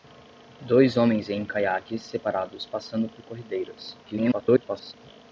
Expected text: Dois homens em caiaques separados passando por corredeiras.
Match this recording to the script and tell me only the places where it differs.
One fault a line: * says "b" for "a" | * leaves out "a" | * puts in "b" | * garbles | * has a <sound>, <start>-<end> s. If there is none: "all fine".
* garbles